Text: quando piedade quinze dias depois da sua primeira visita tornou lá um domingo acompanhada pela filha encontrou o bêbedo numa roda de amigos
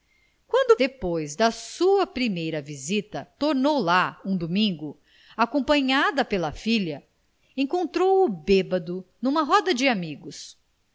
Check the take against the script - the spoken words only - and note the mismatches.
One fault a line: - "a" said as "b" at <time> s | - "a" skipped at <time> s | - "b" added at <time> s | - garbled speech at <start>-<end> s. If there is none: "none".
- "piedade quinze dias" skipped at 0.8 s